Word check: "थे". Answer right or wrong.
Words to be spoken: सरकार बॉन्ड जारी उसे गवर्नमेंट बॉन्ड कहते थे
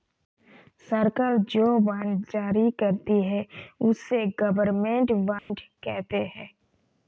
wrong